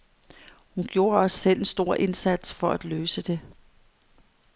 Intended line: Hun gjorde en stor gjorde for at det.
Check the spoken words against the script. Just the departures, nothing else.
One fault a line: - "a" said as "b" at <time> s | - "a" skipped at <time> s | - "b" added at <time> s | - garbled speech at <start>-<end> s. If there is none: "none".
- "også selv" added at 1.2 s
- "gjorde" said as "indsats" at 1.9 s
- "løse" added at 2.8 s